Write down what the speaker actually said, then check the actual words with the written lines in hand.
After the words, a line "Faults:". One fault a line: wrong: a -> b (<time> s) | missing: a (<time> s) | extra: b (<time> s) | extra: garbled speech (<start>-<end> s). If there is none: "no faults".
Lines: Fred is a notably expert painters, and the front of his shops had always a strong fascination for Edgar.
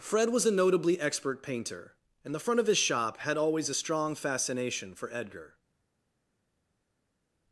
Fred was a notably expert painter, and the front of his shop had always a strong fascination for Edgar.
Faults:
wrong: is -> was (0.3 s)
wrong: painters -> painter (1.4 s)
wrong: shops -> shop (2.8 s)